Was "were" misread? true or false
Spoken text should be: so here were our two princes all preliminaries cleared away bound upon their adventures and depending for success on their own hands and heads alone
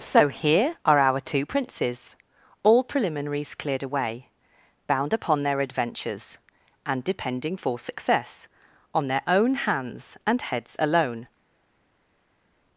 true